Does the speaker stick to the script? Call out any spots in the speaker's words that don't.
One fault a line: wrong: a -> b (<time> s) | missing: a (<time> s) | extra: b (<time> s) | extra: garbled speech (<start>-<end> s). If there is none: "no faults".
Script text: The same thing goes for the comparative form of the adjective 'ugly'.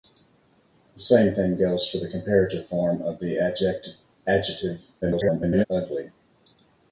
extra: garbled speech (5.0-5.7 s)